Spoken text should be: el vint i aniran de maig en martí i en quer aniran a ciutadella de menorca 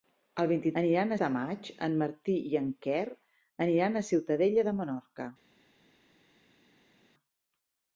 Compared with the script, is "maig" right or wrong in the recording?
right